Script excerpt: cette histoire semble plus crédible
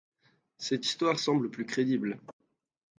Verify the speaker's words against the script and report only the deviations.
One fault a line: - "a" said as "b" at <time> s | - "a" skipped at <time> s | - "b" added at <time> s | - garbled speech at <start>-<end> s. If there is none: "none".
none